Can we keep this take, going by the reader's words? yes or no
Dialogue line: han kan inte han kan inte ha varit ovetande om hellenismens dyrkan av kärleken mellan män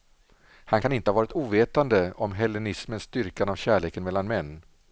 no